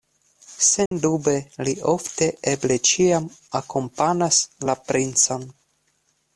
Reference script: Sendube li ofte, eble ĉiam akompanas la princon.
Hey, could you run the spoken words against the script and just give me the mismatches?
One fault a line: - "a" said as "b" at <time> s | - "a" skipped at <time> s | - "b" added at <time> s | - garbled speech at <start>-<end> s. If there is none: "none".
none